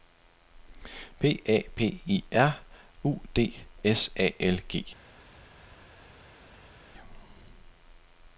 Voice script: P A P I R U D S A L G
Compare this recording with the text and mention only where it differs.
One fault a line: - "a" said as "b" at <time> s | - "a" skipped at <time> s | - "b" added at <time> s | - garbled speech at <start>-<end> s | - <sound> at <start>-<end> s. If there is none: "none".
none